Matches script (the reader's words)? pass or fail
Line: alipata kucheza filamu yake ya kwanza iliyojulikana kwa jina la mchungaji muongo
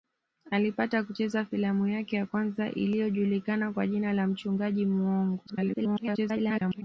fail